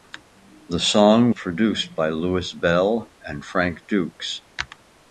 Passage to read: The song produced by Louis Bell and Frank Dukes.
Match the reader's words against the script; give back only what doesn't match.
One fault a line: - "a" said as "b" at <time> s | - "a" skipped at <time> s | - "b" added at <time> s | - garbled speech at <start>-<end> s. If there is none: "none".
none